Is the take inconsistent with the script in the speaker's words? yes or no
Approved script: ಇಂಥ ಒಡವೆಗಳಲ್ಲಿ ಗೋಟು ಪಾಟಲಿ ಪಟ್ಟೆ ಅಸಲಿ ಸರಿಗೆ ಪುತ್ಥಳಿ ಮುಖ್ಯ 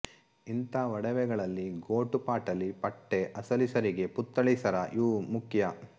yes